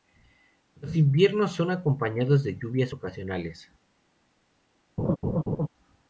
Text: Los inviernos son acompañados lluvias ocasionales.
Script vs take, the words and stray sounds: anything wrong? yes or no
yes